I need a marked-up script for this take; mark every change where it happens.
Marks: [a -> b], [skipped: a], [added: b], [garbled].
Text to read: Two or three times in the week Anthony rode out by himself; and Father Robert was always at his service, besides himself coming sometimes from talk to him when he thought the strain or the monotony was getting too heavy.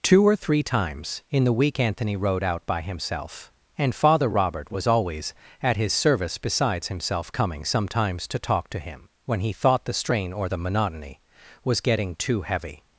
Two or three times in the week Anthony rode out by himself; and Father Robert was always at his service, besides himself coming sometimes [from -> to] talk to him when he thought the strain or the monotony was getting too heavy.